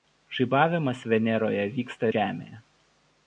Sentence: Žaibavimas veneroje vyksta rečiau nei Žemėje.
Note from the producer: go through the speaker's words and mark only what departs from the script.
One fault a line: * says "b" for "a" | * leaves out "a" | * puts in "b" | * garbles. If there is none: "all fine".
* leaves out "rečiau nei"